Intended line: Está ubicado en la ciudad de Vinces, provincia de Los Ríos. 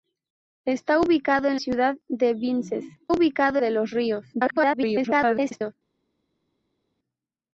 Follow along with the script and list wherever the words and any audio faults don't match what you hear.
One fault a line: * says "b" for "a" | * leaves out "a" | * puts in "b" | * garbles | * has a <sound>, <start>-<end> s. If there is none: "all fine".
* leaves out "la"
* says "ubicado" for "provincia"
* garbles